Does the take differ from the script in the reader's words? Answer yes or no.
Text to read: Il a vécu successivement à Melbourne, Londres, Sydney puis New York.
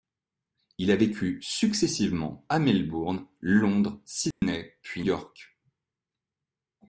yes